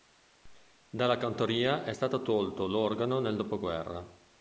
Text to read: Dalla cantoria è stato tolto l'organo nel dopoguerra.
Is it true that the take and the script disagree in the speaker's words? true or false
false